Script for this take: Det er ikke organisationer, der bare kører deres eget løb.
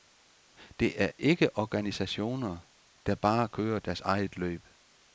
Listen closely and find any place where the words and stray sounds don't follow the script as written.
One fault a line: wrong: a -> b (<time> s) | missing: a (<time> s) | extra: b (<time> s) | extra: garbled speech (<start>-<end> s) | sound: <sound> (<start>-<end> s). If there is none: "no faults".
no faults